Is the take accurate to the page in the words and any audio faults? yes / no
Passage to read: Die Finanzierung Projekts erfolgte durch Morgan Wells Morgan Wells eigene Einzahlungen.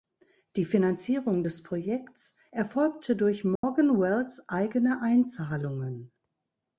no